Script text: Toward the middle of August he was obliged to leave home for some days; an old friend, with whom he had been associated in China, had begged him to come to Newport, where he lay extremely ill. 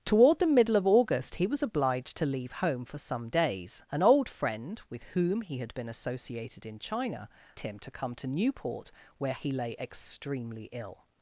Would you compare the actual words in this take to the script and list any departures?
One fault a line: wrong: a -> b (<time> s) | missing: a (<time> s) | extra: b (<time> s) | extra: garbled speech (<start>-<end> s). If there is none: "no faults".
missing: had begged (7.3 s)